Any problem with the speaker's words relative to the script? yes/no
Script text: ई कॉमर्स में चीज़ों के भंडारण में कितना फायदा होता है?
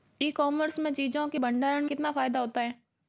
yes